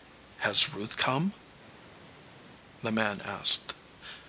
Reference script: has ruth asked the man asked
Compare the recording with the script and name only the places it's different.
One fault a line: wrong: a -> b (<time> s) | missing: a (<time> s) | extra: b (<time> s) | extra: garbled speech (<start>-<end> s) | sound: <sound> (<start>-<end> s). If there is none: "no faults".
wrong: asked -> come (0.9 s)